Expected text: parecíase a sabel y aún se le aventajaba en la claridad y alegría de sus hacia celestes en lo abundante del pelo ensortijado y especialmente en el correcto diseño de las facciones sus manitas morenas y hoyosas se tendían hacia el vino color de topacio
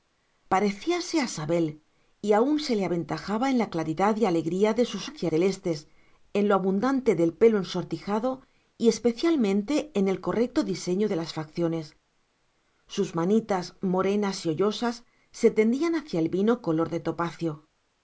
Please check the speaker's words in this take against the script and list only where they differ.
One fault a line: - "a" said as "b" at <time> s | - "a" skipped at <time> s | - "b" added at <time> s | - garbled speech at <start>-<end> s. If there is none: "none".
none